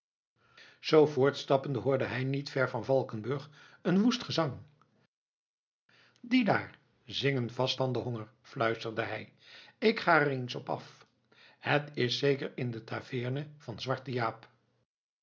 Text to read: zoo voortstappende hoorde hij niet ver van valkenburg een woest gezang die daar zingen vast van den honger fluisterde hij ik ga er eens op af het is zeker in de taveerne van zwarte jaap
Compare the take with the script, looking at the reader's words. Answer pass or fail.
pass